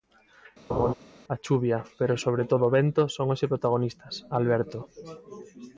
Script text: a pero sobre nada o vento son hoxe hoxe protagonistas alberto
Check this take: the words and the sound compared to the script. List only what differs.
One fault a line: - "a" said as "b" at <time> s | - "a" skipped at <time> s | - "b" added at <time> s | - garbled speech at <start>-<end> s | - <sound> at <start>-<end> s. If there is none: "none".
- laugh at 0.7-0.9 s
- "chuvia" added at 1.4 s
- "nada" said as "todo" at 2.5 s
- "hoxe" skipped at 3.5 s